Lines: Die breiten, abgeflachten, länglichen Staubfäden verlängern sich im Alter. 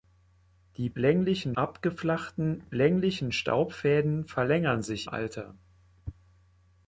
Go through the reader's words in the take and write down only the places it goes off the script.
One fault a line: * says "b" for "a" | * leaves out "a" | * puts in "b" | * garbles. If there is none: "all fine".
* says "länglichen" for "breiten"
* leaves out "im"